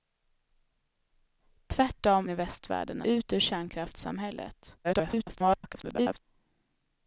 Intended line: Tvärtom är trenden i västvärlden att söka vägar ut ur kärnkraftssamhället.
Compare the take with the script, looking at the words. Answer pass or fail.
fail